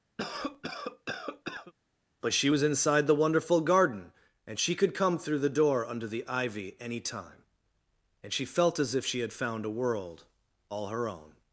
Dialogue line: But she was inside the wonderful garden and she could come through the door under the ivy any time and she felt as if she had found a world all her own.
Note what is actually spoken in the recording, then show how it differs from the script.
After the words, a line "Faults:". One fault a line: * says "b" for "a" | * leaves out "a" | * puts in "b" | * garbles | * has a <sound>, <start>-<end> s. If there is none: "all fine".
But she was inside the wonderful garden and she could come through the door under the ivy any time and she felt as if she had found a world all her own.
Faults:
* has a cough, 0.2-1.7 s